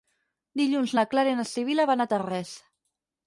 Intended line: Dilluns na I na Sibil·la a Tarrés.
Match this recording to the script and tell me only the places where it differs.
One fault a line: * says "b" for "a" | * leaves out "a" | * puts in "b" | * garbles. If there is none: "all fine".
* puts in "Clara"
* puts in "van"